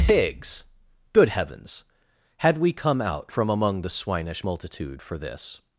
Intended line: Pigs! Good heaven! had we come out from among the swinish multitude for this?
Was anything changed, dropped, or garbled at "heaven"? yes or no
yes